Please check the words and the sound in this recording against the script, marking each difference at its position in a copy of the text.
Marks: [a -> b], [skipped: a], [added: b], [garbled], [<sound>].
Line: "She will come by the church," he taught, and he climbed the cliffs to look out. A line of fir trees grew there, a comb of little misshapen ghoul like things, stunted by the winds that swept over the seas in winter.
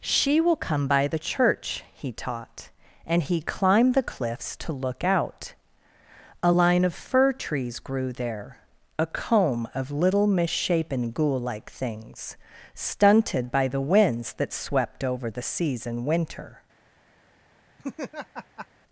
"She will come by the church," he taught, and he climbed the cliffs to look out. A line of fir trees grew there, a comb of little misshapen ghoul like things, stunted by the winds that swept over the seas in winter. [laugh]